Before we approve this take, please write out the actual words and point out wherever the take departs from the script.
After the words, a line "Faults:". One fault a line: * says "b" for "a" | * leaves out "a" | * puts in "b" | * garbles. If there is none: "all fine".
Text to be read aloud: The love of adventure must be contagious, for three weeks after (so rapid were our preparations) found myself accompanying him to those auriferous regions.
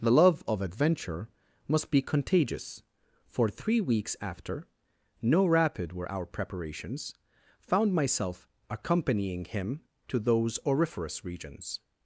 The love of adventure must be contagious, for three weeks after (no rapid were our preparations) found myself accompanying him to those auriferous regions.
Faults:
* says "no" for "so"